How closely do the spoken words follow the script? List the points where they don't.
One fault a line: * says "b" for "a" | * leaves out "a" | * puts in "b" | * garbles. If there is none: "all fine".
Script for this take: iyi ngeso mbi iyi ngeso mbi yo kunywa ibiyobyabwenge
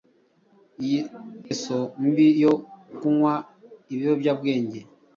* leaves out "iyi ngeso mbi"